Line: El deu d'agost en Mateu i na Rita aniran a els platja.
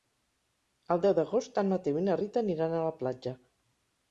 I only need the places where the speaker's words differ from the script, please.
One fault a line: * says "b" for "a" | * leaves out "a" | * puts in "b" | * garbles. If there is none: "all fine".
* says "la" for "els"